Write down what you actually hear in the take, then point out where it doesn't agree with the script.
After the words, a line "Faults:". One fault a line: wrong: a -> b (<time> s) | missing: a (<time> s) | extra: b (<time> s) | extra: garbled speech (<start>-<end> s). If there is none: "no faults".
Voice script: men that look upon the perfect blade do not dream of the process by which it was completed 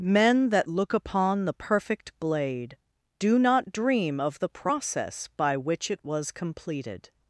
men that look upon the perfect blade do not dream of the process by which it was completed
Faults:
no faults